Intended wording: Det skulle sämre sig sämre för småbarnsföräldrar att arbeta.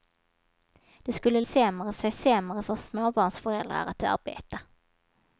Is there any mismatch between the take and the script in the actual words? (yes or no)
no